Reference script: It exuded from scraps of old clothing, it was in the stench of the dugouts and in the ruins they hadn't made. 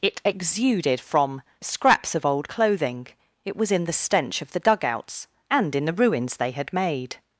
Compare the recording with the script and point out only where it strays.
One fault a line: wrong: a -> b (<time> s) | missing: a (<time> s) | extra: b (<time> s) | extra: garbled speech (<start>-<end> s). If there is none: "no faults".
wrong: hadn't -> had (6.5 s)